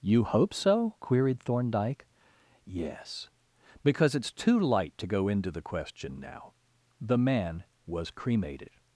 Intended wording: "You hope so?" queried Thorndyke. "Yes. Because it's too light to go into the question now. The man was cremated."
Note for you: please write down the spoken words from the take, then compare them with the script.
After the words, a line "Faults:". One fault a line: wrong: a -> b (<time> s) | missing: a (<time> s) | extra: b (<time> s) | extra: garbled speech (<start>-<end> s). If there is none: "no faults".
"You hope so?" queried Thorndyke. "Yes. Because it's too light to go into the question now. The man was cremated."
Faults:
no faults